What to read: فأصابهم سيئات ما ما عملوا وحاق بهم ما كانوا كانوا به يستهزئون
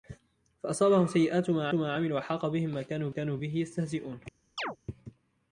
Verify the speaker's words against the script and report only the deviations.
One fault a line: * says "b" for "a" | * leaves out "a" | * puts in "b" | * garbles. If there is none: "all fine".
all fine